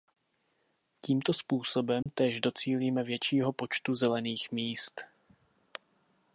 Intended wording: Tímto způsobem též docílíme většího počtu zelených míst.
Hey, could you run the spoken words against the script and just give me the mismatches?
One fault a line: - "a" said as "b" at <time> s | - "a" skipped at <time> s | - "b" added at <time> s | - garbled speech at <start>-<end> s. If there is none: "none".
none